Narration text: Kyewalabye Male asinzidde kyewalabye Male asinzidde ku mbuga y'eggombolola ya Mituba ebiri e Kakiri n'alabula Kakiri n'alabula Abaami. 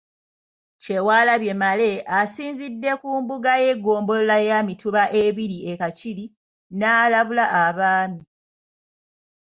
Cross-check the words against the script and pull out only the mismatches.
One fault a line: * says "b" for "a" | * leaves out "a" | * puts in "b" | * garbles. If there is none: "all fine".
* leaves out "kyewalabye Male asinzidde"
* leaves out "Kakiri n'alabula"